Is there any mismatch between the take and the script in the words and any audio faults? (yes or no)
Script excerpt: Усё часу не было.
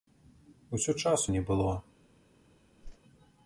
yes